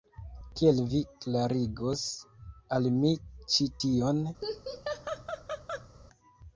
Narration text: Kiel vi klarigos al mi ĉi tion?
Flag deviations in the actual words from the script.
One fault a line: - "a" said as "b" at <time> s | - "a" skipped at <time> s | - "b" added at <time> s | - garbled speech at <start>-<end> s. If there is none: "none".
none